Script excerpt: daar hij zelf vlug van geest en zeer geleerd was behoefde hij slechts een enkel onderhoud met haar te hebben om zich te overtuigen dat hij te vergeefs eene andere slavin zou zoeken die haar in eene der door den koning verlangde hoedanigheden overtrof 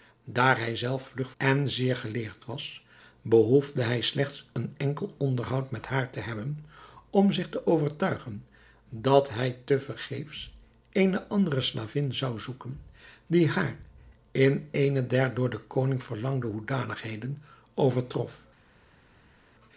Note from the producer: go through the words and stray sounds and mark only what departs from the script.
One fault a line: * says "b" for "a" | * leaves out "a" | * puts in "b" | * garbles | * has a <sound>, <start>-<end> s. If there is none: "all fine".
* leaves out "van geest"